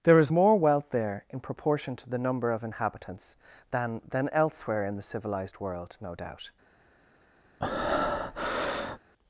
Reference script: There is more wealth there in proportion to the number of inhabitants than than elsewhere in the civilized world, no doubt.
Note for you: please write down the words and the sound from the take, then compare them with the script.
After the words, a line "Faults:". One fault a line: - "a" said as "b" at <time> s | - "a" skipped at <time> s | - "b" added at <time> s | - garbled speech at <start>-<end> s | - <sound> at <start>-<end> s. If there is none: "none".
There is more wealth there in proportion to the number of inhabitants than than elsewhere in the civilized world, no doubt.
Faults:
- breath at 7.6-9.0 s